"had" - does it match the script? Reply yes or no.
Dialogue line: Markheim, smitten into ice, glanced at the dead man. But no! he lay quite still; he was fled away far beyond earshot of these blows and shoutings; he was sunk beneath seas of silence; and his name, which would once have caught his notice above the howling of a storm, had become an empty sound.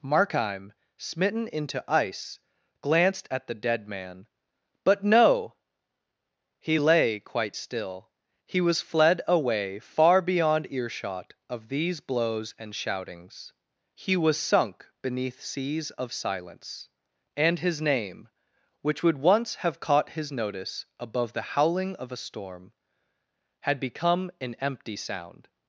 yes